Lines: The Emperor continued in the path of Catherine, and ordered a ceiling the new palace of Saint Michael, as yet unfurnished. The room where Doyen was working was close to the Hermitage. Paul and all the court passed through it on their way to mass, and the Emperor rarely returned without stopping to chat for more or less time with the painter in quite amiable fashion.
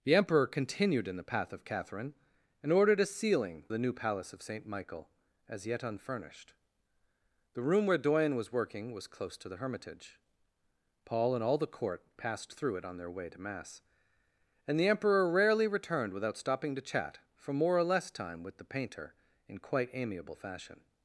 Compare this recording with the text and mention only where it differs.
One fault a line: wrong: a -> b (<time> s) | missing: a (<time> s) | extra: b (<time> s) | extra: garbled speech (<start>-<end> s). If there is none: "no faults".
no faults